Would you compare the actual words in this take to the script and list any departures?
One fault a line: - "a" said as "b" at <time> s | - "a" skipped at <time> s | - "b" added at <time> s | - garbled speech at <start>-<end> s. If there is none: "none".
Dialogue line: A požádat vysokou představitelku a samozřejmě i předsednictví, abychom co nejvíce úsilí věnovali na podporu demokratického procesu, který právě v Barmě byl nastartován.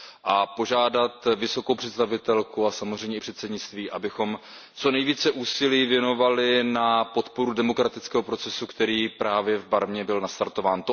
none